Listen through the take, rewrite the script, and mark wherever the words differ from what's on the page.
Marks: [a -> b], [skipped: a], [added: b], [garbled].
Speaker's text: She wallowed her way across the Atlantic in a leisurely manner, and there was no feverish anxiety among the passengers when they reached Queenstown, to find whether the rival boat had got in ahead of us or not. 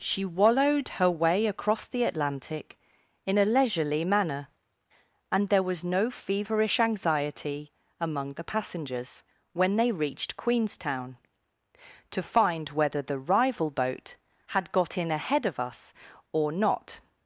She wallowed her way across the Atlantic in a leisurely manner, and there was no feverish anxiety among the passengers when they reached Queenstown, to find whether the rival boat had got in ahead of us or not.